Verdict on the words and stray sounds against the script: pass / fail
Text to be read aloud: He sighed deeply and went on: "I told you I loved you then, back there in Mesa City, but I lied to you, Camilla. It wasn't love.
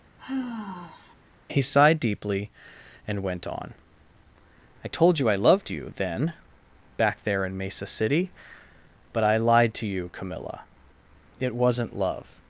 fail